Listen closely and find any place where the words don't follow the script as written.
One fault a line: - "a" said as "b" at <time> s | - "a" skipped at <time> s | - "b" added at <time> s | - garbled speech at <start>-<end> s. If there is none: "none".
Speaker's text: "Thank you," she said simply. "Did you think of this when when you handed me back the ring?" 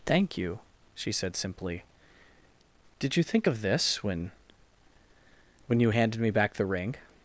none